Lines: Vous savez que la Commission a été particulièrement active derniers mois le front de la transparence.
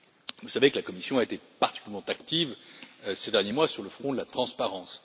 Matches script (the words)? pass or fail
fail